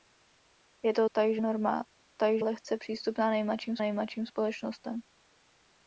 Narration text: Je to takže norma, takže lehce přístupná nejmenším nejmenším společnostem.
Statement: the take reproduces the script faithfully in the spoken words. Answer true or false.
true